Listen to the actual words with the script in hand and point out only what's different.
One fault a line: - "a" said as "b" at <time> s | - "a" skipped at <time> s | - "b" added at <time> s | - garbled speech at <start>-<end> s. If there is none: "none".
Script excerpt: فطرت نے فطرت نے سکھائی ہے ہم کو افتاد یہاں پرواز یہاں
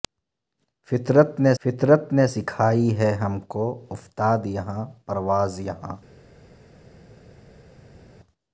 none